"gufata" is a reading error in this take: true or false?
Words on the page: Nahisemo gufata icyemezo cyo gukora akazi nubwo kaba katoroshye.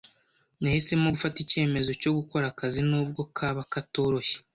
false